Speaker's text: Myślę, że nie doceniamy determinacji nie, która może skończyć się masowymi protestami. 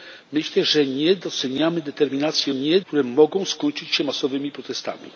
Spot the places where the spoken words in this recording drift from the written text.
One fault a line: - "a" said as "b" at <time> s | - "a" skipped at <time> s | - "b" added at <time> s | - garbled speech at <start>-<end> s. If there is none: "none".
none